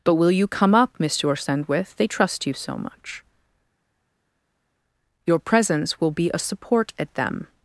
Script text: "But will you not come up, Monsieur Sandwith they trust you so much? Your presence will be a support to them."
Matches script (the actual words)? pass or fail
fail